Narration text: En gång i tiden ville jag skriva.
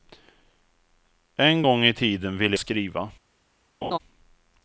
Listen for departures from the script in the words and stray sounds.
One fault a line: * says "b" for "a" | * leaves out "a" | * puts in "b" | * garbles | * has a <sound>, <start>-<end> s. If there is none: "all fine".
* leaves out "jag"
* has a laugh, 3.8-4.0 s